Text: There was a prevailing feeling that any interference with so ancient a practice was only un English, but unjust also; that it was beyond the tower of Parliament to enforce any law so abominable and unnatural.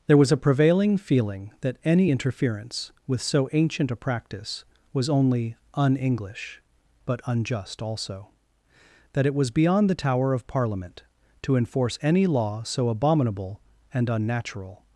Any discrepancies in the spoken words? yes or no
no